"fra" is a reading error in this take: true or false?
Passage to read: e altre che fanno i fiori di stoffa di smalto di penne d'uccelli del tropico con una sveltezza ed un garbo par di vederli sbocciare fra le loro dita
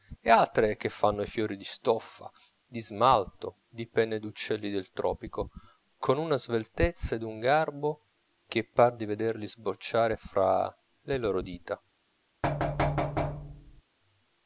false